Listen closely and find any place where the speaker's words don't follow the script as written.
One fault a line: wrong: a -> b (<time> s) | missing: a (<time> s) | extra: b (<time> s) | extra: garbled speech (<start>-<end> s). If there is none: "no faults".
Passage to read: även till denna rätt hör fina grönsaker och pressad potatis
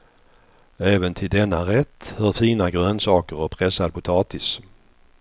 no faults